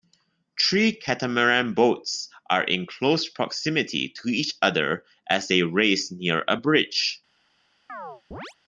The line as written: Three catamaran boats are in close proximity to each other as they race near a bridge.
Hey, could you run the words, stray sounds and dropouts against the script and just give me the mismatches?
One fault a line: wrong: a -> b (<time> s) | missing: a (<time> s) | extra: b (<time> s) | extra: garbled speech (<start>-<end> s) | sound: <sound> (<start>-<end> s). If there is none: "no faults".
sound: chirp (7.9-8.5 s)